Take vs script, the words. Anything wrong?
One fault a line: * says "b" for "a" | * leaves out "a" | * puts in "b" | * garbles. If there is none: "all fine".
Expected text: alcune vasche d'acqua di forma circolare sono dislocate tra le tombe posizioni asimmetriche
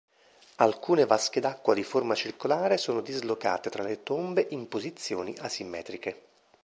* puts in "in"